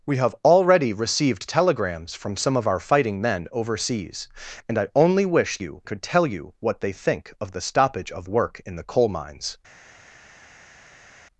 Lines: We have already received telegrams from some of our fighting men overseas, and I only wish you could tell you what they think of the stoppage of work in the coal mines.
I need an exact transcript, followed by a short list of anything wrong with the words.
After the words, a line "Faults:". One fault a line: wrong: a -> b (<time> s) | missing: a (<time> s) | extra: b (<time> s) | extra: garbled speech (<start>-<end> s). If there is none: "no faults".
We have already received telegrams from some of our fighting men overseas, and I only wish you could tell you what they think of the stoppage of work in the coal mines.
Faults:
no faults